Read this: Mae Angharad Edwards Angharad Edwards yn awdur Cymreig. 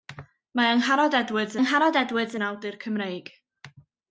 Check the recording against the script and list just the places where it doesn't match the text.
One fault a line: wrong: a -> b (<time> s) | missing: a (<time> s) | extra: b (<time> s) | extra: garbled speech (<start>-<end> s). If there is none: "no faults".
no faults